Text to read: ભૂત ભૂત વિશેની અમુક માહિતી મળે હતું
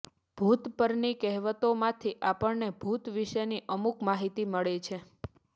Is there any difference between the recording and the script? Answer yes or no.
yes